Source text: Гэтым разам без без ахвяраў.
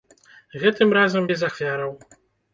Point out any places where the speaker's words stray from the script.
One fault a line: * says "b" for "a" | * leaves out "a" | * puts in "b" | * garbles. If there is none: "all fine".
* leaves out "без"